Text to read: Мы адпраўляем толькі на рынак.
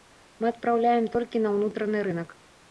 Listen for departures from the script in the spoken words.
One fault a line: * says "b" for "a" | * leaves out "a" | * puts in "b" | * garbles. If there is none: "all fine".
* puts in "ўнутраны"